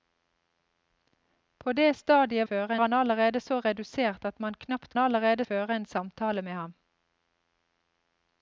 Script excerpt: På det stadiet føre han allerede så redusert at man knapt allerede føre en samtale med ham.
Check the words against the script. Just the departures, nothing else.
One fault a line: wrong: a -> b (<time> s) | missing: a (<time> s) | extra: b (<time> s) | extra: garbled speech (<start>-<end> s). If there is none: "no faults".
no faults